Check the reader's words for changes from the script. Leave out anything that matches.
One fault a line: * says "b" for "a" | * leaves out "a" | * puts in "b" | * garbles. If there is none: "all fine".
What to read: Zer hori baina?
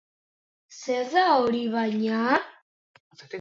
* puts in "da"